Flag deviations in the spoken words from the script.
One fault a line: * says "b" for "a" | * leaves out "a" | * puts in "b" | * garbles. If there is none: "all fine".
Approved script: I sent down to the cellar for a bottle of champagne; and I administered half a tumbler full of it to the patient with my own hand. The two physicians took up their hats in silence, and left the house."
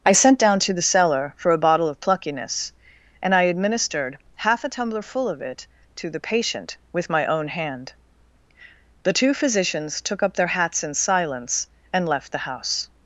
* says "pluckiness" for "champagne"